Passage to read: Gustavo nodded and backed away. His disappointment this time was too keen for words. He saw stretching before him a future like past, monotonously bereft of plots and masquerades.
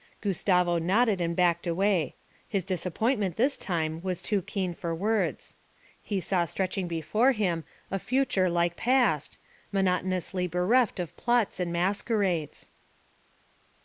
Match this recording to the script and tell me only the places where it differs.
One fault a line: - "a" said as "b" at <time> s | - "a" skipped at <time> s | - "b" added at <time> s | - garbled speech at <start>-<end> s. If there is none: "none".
none